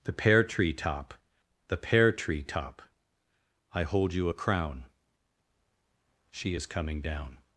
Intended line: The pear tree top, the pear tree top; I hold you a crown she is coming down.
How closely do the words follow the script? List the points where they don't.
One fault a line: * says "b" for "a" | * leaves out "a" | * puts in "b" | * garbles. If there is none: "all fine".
all fine